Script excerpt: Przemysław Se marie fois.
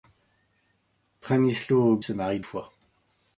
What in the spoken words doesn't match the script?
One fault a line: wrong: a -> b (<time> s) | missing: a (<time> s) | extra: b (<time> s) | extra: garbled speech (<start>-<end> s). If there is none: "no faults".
no faults